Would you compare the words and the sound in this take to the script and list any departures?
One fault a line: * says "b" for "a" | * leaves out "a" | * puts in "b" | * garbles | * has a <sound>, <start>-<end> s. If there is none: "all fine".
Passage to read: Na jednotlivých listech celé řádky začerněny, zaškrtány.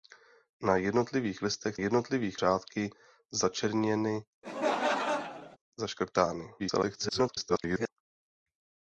* says "jednotlivých" for "celé"
* has a laugh, 4.4-5.6 s
* garbles